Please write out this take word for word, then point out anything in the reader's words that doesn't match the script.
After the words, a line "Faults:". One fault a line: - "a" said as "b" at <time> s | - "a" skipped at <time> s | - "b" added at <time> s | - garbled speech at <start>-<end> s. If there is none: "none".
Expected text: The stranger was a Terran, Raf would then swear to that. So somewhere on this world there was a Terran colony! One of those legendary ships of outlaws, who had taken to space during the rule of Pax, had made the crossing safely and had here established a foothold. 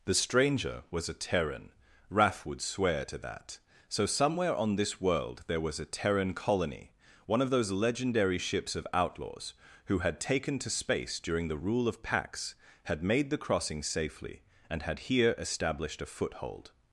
The stranger was a Terran, Raf would swear to that. So somewhere on this world there was a Terran colony! One of those legendary ships of outlaws, who had taken to space during the rule of Pax, had made the crossing safely and had here established a foothold.
Faults:
- "then" skipped at 2.6 s